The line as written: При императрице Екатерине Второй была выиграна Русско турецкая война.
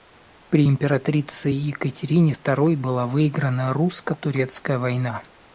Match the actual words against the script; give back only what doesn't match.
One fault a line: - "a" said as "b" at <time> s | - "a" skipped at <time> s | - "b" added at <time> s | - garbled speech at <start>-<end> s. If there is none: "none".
none